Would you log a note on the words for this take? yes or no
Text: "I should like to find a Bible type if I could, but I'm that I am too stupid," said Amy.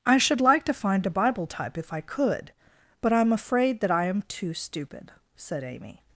yes